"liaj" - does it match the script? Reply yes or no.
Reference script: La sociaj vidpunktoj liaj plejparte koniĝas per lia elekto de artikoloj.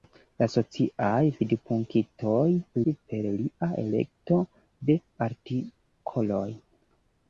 no